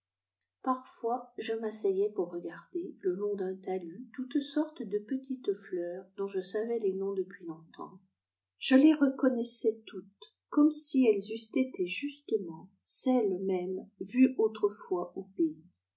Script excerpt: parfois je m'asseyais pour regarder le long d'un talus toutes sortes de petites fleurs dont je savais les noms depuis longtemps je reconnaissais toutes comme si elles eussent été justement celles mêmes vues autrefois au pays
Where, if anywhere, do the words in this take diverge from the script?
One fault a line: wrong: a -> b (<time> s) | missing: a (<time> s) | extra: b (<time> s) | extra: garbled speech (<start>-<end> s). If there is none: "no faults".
extra: les (8.7 s)